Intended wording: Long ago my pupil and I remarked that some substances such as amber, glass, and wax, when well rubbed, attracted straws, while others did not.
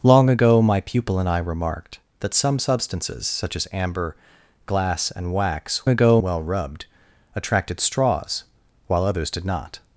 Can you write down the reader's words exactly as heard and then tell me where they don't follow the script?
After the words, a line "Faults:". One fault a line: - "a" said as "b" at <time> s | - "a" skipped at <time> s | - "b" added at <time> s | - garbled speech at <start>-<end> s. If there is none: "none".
Long ago my pupil and I remarked that some substances such as amber, glass, and wax, ago well rubbed, attracted straws, while others did not.
Faults:
- "when" said as "ago" at 5.9 s